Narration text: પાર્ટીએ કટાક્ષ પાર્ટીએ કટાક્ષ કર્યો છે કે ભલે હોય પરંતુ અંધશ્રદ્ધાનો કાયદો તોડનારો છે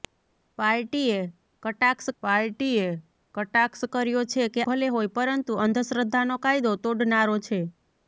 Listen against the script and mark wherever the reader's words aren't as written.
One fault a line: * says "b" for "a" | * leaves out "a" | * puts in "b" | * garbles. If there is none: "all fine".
all fine